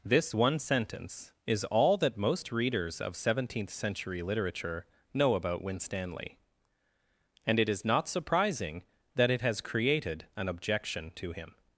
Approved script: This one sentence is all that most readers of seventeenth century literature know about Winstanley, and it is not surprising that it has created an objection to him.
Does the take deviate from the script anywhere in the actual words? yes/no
no